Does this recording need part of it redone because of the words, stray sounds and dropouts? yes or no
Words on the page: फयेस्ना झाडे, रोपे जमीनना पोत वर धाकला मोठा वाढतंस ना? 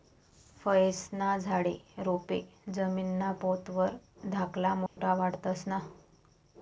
yes